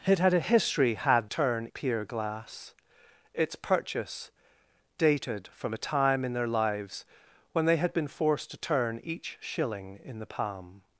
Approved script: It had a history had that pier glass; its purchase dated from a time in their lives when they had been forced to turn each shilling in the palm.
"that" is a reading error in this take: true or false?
true